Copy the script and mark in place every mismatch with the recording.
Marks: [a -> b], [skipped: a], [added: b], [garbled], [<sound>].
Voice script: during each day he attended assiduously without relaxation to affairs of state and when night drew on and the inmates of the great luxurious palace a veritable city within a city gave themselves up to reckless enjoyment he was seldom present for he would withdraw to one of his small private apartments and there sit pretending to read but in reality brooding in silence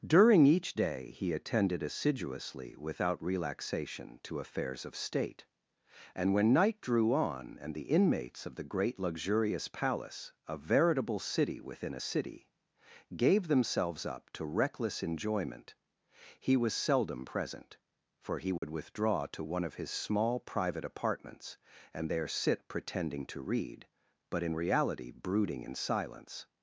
during each day he attended assiduously without relaxation to affairs of state and when night drew on and the inmates of the great luxurious palace a veritable city within a city gave themselves up to reckless enjoyment he was seldom present for he would [dropout] withdraw to one of his small private apartments and there sit pretending to read but in reality brooding in silence